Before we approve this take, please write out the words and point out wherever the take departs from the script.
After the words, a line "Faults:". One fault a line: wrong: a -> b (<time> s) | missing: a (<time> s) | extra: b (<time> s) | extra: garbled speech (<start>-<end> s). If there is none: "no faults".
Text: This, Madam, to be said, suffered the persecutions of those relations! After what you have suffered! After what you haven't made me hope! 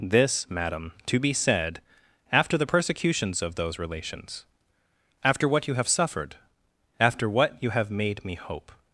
This, Madam, to be said, after the persecutions of those relations! After what you have suffered! After what you have made me hope!
Faults:
wrong: suffered -> after (2.3 s)
wrong: haven't -> have (7.7 s)